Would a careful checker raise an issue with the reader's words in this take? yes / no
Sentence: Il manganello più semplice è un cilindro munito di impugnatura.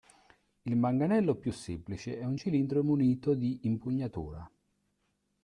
no